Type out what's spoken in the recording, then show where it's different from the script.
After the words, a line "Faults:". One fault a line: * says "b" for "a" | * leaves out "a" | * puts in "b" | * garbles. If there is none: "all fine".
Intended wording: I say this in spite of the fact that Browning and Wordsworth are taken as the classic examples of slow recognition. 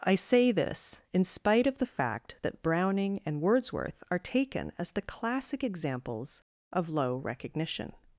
I say this in spite of the fact that Browning and Wordsworth are taken as the classic examples of low recognition.
Faults:
* says "low" for "slow"